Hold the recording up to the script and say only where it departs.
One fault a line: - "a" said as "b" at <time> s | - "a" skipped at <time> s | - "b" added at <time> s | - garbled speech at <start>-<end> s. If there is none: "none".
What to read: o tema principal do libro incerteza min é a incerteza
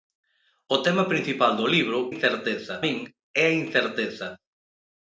none